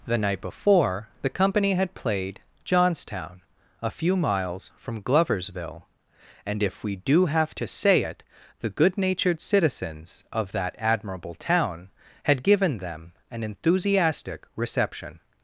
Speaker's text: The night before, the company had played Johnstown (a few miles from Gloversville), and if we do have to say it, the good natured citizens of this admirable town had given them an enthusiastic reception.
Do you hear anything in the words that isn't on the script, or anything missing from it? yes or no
yes